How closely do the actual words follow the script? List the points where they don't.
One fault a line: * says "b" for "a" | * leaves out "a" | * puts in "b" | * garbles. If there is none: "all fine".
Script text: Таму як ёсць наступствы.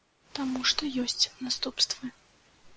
* says "што" for "як"